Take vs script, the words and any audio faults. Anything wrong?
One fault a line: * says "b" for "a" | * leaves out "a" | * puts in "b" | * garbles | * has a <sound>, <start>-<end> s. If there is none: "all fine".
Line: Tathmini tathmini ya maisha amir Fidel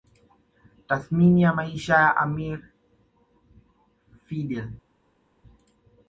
* leaves out "tathmini"
* puts in "ya"